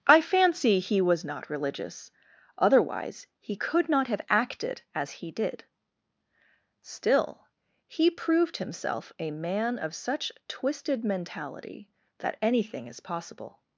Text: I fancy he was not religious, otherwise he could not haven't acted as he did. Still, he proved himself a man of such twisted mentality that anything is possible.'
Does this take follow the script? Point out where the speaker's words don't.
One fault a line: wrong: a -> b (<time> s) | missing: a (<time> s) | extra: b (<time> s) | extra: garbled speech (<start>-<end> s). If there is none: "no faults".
wrong: haven't -> have (4.1 s)